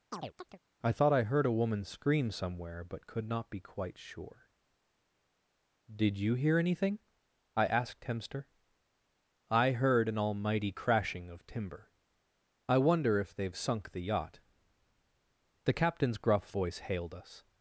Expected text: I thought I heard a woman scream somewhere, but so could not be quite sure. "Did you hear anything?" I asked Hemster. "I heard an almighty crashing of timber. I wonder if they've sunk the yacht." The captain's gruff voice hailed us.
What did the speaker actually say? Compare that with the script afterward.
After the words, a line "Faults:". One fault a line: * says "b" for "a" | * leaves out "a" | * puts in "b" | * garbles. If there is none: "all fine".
I thought I heard a woman scream somewhere, but could not be quite sure. "Did you hear anything?" I asked Hemster. "I heard an almighty crashing of timber. I wonder if they've sunk the yacht." The captain's gruff voice hailed us.
Faults:
* leaves out "so"